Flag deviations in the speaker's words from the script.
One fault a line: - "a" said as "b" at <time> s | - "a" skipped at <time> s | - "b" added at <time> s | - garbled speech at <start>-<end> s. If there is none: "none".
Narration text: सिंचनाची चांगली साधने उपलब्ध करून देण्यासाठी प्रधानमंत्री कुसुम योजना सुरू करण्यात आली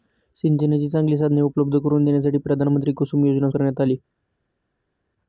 - "सुरू" skipped at 3.5 s